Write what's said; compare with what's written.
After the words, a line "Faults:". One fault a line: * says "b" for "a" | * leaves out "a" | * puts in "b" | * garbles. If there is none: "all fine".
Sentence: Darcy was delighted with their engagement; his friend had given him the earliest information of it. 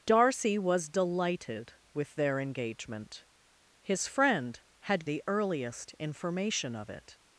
Darcy was delighted with their engagement; his friend had the earliest information of it.
Faults:
* leaves out "given him"